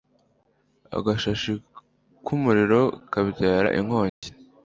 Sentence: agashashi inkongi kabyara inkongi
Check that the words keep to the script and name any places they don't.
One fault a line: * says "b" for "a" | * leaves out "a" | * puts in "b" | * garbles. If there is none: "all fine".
* says "k'umuriro" for "inkongi"